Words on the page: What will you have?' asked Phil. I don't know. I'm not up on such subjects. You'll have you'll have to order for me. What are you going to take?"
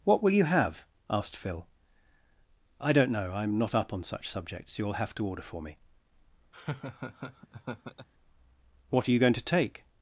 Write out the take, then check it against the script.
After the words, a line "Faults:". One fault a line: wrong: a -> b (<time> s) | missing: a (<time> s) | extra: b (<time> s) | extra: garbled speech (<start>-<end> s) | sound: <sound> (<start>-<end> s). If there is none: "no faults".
What will you have?' asked Phil. I don't know. I'm not up on such subjects. You'll have to order for me. What are you going to take?"
Faults:
missing: you'll have (5.1 s)
sound: laugh (6.5-8.1 s)